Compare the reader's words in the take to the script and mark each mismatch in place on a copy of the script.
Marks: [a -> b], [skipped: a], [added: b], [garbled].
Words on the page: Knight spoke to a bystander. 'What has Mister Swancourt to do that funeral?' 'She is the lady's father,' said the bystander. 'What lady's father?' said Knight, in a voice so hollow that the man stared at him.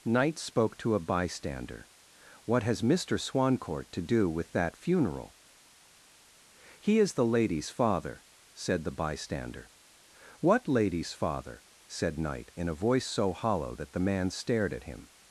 Knight spoke to a bystander. 'What has Mister Swancourt to do [added: with] that funeral?' ['She -> He] is the lady's father,' said the bystander. 'What lady's father?' said Knight, in a voice so hollow that the man stared at him.